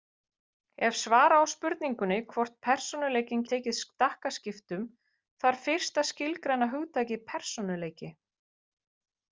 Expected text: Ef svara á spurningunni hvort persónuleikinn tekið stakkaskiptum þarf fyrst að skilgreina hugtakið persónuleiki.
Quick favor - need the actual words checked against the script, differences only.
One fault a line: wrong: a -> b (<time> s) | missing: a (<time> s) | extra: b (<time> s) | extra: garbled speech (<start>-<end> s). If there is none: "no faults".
no faults